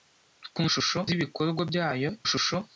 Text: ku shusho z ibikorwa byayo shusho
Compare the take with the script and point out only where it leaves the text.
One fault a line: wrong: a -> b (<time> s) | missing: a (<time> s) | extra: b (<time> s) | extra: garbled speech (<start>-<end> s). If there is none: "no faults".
no faults